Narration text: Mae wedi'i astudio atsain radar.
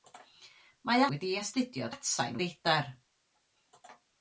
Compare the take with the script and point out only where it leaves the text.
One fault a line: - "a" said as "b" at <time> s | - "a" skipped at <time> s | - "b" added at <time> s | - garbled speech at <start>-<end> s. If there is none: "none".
none